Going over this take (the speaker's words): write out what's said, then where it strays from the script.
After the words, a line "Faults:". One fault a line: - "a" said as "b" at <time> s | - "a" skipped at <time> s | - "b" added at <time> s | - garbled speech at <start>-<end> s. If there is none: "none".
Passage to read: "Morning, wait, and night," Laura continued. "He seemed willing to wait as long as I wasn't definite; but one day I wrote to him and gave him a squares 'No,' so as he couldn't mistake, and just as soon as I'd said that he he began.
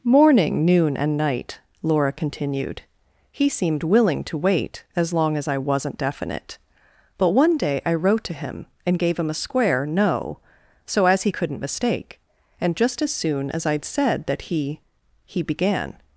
"Morning, noon, and night," Laura continued. "He seemed willing to wait as long as I wasn't definite; but one day I wrote to him and gave him a square 'No,' so as he couldn't mistake, and just as soon as I'd said that he he began.
Faults:
- "wait" said as "noon" at 0.7 s
- "squares" said as "square" at 9.3 s